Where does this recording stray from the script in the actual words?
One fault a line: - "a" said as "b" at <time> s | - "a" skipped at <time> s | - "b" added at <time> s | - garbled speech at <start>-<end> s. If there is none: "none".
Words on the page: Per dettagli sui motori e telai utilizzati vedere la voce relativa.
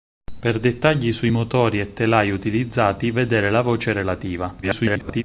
- garbled speech at 4.6-5.2 s